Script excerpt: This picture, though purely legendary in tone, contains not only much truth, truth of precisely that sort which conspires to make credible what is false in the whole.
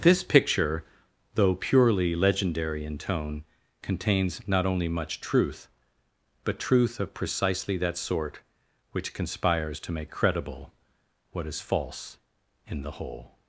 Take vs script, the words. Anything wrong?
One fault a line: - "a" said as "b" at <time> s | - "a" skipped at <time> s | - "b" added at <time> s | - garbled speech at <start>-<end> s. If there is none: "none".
- "but" added at 6.5 s